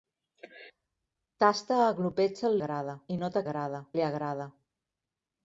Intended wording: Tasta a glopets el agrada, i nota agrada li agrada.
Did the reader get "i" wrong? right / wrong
right